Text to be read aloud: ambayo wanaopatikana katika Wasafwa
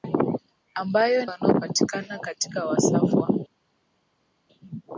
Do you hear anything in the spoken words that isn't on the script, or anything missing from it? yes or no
no